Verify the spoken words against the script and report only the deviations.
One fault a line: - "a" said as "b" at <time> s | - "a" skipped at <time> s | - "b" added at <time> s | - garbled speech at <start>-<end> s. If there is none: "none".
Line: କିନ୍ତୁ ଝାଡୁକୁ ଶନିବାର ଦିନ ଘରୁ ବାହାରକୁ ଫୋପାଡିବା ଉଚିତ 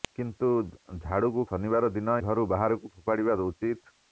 none